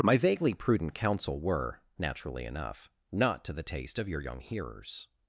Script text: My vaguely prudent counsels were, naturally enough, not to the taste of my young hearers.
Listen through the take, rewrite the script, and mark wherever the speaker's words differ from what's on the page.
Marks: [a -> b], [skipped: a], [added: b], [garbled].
My vaguely prudent [counsels -> counsel] were, naturally enough, not to the taste of [my -> your] young hearers.